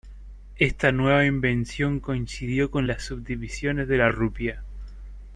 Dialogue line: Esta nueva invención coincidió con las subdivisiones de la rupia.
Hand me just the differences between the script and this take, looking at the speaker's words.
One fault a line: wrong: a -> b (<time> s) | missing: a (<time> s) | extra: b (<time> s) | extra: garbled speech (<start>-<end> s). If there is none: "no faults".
no faults